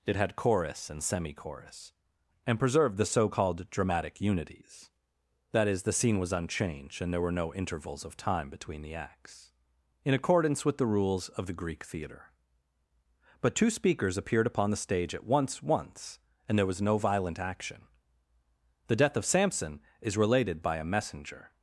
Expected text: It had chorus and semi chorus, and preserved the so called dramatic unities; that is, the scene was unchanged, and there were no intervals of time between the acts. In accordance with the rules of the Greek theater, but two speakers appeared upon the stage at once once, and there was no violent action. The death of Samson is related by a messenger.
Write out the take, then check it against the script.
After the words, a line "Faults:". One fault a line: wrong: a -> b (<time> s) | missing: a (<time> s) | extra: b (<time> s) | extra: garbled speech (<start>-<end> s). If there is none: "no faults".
It had chorus and semi chorus, and preserved the so called dramatic unities; that is, the scene was unchanged, and there were no intervals of time between the acts. In accordance with the rules of the Greek theater, but two speakers appeared upon the stage at once once, and there was no violent action. The death of Samson is related by a messenger.
Faults:
no faults